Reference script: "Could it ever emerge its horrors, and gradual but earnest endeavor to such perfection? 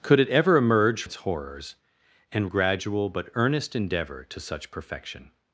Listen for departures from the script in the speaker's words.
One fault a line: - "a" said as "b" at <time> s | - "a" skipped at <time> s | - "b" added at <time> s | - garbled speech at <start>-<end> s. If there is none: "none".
none